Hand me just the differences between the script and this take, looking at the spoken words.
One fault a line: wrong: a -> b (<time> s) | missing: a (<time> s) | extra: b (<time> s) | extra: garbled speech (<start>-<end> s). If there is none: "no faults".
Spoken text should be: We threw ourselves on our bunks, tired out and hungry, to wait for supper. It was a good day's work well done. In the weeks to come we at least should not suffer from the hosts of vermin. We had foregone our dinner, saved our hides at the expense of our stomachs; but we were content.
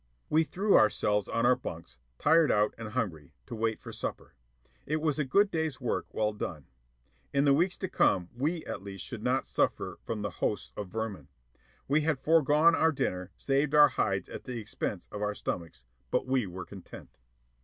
no faults